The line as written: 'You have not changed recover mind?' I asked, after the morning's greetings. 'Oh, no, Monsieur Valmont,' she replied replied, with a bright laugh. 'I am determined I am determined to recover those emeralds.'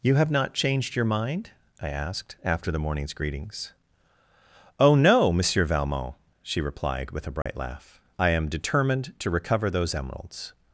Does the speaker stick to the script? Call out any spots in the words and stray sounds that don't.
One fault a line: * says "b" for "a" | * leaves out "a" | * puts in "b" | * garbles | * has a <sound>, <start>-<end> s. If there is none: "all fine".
* says "your" for "recover"
* leaves out "replied"
* has a dropout, 7.4-7.5 s
* leaves out "I am determined"